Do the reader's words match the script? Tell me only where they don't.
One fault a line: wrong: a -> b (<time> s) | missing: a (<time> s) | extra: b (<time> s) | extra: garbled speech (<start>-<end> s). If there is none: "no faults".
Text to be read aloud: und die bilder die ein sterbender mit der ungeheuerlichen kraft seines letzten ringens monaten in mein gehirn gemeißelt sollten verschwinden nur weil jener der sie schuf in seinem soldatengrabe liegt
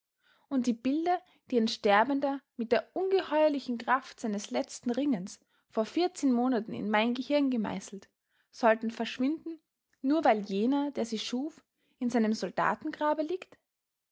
extra: vor vierzehn (5.7 s)